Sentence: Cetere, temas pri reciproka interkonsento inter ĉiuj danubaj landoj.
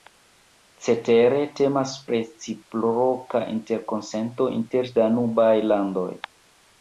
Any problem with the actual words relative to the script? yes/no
yes